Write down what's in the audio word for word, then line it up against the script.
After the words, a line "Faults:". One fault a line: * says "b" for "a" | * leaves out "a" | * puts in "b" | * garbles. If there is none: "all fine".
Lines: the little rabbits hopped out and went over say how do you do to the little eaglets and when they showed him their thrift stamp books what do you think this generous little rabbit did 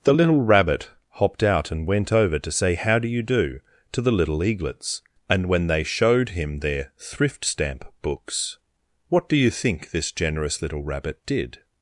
the little rabbit hopped out and went over to say how do you do to the little eaglets and when they showed him their thrift stamp books what do you think this generous little rabbit did
Faults:
* says "rabbit" for "rabbits"
* puts in "to"